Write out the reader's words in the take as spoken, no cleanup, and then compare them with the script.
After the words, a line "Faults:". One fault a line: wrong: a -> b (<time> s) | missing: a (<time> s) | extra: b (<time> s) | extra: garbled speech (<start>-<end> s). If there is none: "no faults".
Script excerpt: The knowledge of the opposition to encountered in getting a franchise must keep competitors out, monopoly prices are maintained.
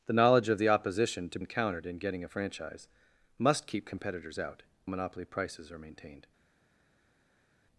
The knowledge of the opposition to encountered in getting a franchise must keep competitors out, monopoly prices are maintained.
Faults:
no faults